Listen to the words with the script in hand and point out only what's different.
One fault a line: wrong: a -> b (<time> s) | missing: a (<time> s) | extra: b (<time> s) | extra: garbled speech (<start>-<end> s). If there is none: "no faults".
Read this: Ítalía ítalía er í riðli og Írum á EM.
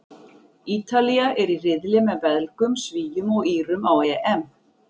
missing: ítalía (1.3 s)
extra: með Belgum Svíum (2.1 s)